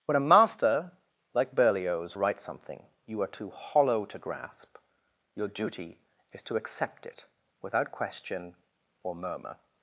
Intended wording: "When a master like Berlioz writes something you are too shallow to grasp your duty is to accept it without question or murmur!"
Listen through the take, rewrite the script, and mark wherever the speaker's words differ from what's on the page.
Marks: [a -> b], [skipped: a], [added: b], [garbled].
"When a master like Berlioz writes something you are too [shallow -> hollow] to grasp your duty is to accept it without question or murmur!"